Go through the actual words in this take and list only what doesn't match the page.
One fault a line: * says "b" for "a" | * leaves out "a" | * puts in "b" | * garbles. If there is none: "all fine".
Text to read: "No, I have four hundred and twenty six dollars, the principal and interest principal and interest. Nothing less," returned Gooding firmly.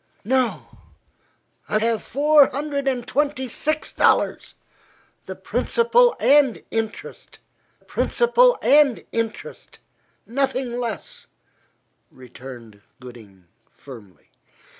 all fine